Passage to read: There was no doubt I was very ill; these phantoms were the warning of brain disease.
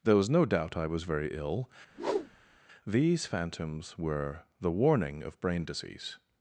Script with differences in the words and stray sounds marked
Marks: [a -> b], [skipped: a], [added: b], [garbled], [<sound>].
There was no doubt I was very ill; [whoosh] these phantoms were the warning of brain disease.